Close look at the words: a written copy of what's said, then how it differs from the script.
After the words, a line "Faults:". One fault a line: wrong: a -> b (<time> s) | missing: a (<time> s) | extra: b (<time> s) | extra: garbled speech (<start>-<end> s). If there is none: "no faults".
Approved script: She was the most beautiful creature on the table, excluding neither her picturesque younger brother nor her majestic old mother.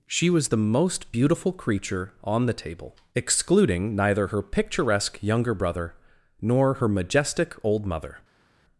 She was the most beautiful creature on the table, excluding neither her picturesque younger brother nor her majestic old mother.
Faults:
no faults